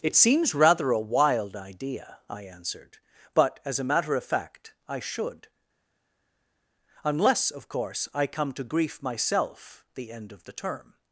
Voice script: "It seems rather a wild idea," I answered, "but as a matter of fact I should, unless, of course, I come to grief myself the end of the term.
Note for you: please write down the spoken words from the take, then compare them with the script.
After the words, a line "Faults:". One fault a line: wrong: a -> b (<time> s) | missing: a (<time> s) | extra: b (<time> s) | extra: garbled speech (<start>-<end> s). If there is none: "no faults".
"It seems rather a wild idea," I answered, "but as a matter of fact I should, unless, of course, I come to grief myself the end of the term.
Faults:
no faults